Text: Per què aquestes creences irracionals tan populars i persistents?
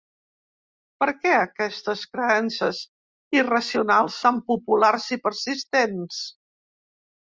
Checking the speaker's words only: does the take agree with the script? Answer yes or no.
yes